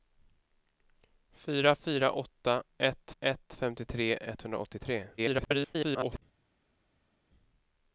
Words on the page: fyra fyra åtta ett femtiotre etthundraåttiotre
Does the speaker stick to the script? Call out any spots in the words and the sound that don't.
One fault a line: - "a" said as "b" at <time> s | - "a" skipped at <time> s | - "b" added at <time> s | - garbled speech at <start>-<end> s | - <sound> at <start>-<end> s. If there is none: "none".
- "ett" added at 3.2 s
- garbled speech at 5.2-6.2 s